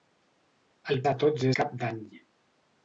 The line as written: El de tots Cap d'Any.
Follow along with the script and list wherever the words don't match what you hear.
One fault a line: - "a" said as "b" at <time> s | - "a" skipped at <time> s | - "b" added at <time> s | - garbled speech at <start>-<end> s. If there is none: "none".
none